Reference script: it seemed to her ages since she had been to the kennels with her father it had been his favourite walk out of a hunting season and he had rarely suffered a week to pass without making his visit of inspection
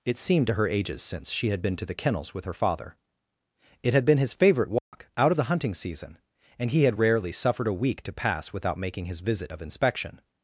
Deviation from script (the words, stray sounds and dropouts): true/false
true